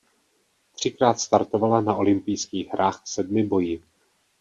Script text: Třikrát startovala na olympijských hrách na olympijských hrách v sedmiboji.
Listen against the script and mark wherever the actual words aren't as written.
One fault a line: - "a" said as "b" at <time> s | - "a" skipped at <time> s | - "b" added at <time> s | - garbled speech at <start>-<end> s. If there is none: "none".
- "na olympijských hrách" skipped at 3.0 s